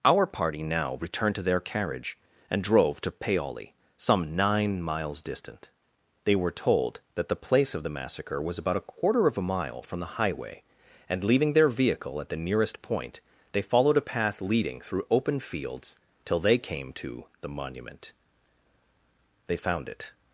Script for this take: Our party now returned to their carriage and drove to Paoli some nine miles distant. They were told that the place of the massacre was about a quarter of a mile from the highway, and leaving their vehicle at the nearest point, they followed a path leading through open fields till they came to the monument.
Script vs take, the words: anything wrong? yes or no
yes